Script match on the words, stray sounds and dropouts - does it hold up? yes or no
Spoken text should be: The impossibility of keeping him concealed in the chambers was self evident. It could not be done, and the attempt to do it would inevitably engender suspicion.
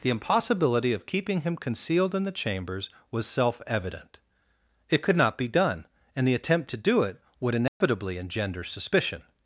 no